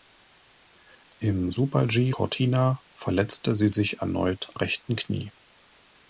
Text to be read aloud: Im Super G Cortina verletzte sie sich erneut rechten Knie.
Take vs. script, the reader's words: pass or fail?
pass